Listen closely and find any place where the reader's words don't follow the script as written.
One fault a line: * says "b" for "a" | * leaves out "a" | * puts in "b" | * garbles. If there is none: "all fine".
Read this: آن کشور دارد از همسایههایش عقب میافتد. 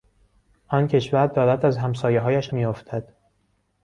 * leaves out "عقب"